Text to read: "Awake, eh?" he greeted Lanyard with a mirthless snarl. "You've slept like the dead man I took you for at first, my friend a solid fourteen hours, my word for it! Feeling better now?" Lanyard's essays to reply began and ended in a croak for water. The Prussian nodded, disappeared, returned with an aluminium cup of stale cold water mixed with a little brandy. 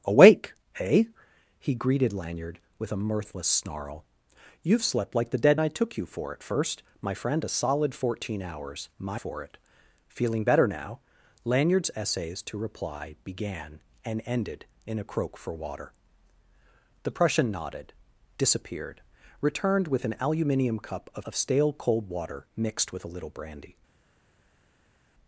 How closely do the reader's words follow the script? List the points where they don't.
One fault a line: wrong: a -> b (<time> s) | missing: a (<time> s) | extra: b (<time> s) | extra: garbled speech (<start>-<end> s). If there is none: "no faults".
missing: man (5.6 s)
missing: word (9.2 s)
extra: of (21.2 s)